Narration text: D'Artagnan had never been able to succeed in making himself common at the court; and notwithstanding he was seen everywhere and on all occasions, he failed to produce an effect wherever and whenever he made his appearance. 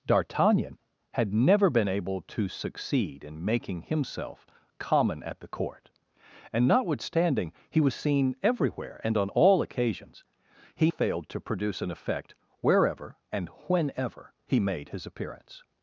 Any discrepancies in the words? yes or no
no